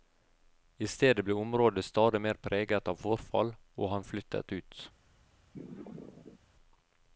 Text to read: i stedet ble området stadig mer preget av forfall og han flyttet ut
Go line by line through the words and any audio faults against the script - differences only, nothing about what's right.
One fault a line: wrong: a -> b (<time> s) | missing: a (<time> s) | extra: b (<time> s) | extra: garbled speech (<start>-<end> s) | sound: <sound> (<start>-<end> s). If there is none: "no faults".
sound: sneeze (5.5-6.4 s)